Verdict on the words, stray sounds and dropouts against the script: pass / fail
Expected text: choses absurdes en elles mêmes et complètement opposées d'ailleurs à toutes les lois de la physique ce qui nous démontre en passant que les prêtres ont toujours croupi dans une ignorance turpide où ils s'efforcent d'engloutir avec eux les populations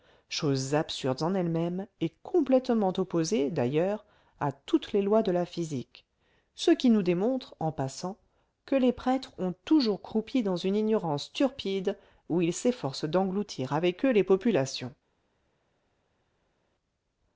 pass